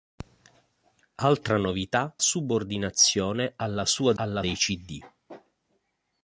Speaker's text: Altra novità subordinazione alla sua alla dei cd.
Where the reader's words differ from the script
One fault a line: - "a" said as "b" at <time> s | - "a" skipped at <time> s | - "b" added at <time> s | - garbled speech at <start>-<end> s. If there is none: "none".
none